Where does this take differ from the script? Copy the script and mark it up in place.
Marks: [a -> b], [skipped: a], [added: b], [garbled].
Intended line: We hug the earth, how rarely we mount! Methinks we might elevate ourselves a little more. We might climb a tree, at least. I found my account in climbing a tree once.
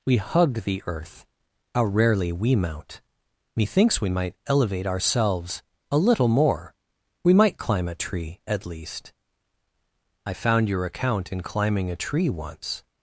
We hug the earth, how rarely we mount! Methinks we might elevate ourselves a little more. We might climb a tree, at least. I found [my -> your] account in climbing a tree once.